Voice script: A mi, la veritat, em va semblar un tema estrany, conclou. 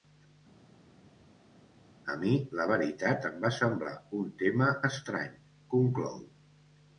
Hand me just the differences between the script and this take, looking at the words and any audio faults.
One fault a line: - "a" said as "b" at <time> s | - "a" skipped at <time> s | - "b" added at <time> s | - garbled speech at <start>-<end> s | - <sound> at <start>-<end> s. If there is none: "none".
none